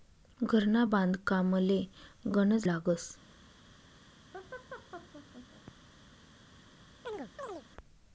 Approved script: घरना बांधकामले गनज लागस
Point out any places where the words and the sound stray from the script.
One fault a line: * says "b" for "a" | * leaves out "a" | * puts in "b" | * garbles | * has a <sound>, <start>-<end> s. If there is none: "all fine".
* has a laugh, 4.3-5.7 s
* has a chirp, 7.0-7.6 s